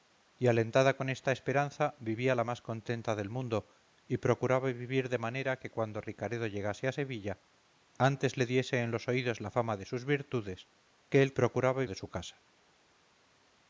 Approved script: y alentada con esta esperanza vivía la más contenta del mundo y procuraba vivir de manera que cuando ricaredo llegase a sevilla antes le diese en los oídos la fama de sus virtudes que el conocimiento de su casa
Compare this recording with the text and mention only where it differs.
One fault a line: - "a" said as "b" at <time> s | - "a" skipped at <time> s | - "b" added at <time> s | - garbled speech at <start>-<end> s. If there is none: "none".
- "conocimiento" said as "procuraba" at 11.3 s